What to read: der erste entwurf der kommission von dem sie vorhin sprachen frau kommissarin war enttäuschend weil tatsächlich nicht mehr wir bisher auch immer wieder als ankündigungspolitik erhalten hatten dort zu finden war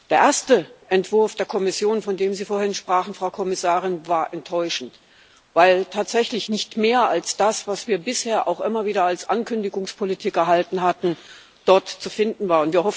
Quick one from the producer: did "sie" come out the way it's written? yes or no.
yes